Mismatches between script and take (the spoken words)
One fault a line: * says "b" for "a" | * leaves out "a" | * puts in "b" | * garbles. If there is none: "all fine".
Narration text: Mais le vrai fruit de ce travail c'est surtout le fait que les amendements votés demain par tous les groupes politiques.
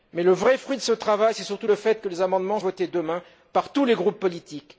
all fine